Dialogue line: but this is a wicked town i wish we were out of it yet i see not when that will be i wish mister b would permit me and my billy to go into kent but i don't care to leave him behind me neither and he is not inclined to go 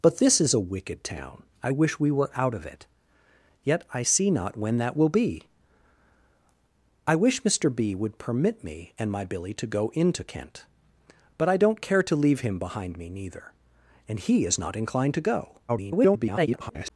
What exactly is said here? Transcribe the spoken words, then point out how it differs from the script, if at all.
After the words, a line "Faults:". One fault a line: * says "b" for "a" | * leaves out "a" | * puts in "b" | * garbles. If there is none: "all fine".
but this is a wicked town i wish we were out of it yet i see not when that will be i wish mister b would permit me and my billy to go into kent but i don't care to leave him behind me neither and he is not inclined to go [garbled]
Faults:
* garbles